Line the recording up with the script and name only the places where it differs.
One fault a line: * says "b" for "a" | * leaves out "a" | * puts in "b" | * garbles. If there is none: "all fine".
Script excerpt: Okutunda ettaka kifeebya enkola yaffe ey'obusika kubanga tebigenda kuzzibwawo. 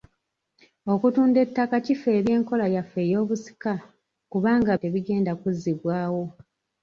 all fine